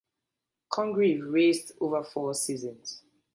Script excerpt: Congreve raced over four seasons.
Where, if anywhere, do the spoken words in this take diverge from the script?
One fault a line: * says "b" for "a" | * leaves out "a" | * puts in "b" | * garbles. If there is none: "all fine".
all fine